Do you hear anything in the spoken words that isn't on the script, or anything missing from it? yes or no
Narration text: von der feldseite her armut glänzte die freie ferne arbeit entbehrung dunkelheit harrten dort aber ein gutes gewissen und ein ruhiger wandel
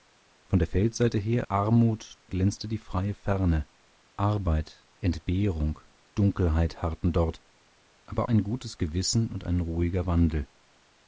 no